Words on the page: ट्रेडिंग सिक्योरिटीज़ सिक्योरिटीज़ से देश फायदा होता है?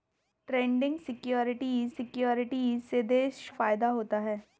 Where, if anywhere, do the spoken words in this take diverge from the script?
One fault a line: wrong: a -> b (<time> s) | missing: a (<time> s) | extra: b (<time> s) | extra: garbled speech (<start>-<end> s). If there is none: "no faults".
no faults